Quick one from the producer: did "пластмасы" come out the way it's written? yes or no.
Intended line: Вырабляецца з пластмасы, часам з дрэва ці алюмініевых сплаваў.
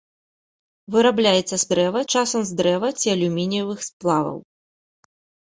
no